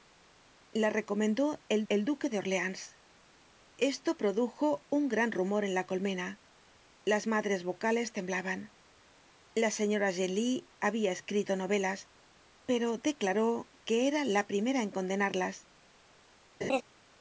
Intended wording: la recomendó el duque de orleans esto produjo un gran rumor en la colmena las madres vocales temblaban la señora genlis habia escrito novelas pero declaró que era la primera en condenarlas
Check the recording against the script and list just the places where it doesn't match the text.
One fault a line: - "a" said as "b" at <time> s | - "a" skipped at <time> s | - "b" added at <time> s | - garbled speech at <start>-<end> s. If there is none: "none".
- "el" added at 1.9 s